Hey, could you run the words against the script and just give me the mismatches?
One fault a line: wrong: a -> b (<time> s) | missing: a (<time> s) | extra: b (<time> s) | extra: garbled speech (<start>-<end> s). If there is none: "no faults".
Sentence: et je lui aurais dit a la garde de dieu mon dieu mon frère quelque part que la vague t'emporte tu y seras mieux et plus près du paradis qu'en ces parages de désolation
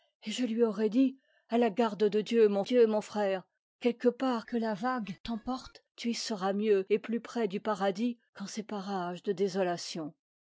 no faults